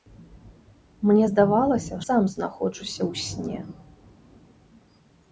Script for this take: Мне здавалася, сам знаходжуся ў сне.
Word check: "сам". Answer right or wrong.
right